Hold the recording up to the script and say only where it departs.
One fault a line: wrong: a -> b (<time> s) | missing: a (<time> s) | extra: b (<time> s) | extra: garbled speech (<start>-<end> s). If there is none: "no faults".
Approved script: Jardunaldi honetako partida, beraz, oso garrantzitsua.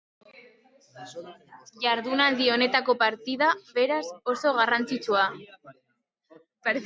no faults